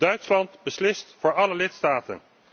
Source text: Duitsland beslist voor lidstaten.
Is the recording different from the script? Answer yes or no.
yes